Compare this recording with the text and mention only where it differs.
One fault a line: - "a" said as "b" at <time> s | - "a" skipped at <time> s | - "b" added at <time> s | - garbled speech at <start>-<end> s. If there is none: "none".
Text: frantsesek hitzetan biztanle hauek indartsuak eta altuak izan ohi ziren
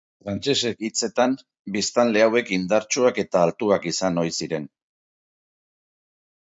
none